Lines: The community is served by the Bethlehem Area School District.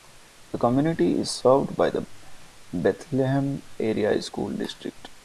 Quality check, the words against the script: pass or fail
pass